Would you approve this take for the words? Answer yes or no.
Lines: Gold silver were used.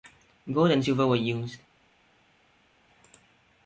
no